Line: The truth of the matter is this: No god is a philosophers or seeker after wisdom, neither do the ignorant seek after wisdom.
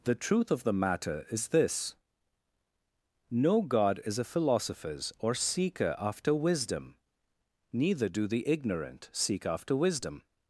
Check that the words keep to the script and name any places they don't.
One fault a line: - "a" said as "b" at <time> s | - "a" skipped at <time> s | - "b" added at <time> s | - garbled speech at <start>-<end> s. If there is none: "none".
none